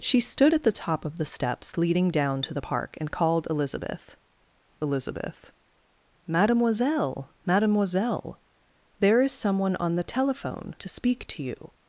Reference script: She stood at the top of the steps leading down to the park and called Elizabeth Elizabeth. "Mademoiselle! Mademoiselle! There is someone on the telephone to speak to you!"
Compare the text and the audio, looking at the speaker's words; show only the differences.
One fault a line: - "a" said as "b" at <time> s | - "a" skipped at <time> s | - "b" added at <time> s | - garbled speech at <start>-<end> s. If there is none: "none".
none